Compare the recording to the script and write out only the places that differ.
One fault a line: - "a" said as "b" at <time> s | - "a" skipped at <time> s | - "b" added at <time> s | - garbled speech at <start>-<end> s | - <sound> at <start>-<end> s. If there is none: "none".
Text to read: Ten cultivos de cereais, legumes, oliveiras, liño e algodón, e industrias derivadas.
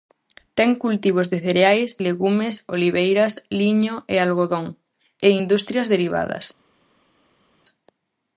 none